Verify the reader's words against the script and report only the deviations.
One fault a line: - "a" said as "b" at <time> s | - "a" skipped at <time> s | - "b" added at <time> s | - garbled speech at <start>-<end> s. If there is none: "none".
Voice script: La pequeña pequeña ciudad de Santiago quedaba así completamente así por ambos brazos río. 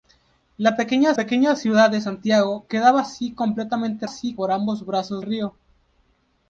none